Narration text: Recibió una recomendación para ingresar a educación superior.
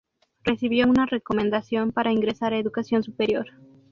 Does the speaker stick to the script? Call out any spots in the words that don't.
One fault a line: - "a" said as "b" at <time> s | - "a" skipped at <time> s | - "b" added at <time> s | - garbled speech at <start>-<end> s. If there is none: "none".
none